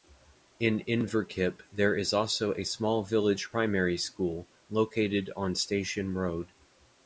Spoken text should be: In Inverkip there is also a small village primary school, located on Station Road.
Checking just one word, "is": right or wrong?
right